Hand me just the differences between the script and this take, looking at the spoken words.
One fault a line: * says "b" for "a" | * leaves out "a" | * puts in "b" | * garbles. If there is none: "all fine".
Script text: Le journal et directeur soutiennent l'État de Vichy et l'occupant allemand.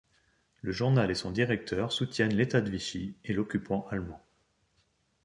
* puts in "son"